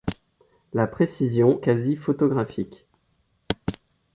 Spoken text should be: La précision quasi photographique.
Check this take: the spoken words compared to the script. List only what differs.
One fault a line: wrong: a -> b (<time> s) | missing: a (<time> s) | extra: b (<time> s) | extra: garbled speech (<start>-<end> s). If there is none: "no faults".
no faults